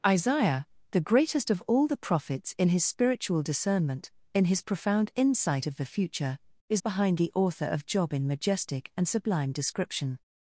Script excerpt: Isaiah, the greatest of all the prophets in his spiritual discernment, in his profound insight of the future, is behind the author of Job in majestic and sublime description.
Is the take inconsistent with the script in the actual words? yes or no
no